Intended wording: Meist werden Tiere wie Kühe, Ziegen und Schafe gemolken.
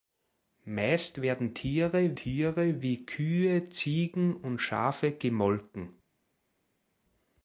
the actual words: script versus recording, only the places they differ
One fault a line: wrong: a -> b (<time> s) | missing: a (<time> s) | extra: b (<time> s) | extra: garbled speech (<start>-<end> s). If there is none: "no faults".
extra: Tiere (2.1 s)